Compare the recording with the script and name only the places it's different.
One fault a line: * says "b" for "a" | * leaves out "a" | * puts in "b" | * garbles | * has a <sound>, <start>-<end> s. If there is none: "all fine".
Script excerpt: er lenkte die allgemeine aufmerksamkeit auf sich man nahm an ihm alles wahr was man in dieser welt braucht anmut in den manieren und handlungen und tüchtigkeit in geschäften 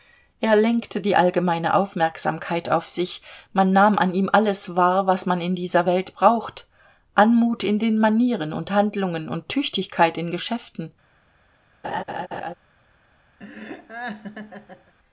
* has a laugh, 11.8-12.5 s
* has a laugh, 13.4-14.9 s